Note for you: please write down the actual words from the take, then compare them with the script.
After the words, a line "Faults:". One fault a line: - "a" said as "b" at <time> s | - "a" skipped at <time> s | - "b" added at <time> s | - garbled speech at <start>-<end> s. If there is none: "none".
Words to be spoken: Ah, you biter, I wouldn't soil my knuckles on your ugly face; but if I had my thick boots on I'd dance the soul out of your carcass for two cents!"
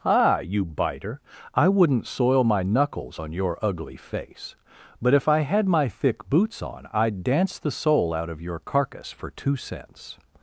Ah, you biter, I wouldn't soil my knuckles on your ugly face; but if I had my thick boots on I'd dance the soul out of your carcass for two cents!"
Faults:
none